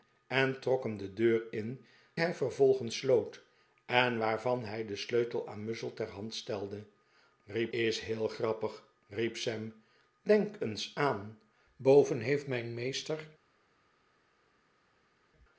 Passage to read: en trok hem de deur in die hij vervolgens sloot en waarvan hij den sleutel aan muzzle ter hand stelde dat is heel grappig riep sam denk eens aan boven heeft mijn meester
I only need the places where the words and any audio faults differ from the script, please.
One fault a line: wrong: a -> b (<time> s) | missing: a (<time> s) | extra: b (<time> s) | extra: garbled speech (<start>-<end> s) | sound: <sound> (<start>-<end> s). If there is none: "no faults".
missing: die (1.9 s)
wrong: dat -> riep (7.5 s)